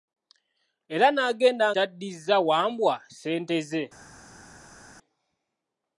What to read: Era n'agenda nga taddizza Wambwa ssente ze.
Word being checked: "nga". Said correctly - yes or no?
no